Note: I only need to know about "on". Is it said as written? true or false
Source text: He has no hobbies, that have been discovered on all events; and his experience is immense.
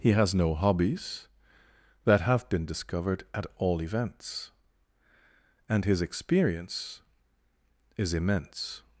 false